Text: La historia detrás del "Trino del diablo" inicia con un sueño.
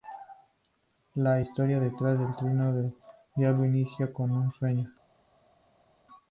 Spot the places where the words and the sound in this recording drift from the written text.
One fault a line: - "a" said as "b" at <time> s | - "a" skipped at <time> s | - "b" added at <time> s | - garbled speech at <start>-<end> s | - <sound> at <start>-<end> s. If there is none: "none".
none